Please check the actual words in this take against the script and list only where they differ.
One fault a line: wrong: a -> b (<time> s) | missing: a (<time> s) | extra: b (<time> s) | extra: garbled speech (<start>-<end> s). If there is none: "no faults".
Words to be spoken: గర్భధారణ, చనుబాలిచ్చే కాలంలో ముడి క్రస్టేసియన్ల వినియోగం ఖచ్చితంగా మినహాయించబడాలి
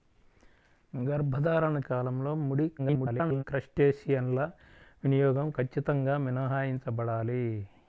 missing: చనుబాలిచ్చే (1.8 s)
extra: garbled speech (2.8-3.4 s)